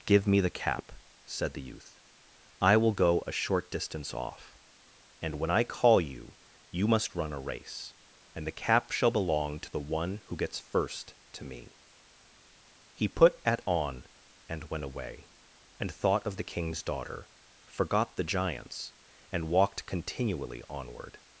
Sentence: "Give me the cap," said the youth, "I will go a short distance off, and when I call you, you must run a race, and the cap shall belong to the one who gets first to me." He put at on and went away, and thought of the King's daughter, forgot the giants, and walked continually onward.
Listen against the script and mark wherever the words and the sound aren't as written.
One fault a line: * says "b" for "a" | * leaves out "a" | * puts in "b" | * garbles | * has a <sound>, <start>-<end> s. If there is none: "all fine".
all fine